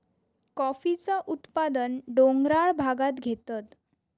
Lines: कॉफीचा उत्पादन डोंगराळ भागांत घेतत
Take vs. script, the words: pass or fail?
pass